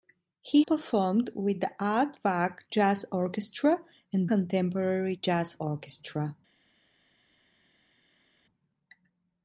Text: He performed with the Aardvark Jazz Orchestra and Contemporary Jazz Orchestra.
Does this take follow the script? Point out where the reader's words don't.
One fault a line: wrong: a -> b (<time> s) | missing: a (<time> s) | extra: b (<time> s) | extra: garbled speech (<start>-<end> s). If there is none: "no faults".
no faults